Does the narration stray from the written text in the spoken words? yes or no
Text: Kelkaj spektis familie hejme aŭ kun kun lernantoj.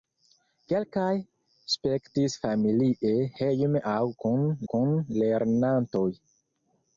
no